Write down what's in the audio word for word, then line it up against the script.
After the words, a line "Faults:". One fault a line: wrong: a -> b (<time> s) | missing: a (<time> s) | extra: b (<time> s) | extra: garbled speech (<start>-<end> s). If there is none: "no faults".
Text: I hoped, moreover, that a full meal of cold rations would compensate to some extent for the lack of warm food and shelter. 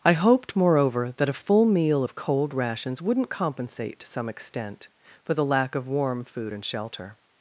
I hoped, moreover, that a full meal of cold rations wouldn't compensate to some extent for the lack of warm food and shelter.
Faults:
wrong: would -> wouldn't (3.0 s)